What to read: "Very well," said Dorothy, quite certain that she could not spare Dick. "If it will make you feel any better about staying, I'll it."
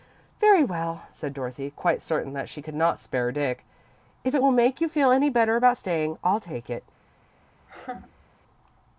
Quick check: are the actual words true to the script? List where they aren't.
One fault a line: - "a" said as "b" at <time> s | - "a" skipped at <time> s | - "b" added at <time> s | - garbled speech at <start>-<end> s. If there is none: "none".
- "take" added at 6.4 s